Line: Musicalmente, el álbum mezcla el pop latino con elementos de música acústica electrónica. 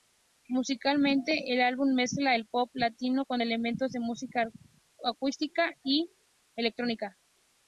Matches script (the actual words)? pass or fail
fail